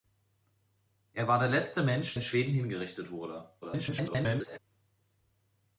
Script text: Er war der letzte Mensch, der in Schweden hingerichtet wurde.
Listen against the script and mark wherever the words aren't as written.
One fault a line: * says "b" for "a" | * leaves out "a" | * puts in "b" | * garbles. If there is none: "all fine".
* leaves out "der"
* garbles